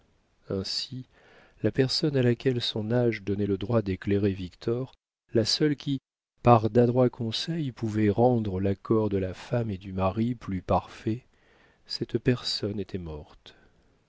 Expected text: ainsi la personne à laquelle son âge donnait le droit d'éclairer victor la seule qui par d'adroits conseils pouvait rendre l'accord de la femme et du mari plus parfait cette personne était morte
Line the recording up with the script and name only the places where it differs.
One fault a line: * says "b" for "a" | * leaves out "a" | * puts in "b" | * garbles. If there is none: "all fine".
all fine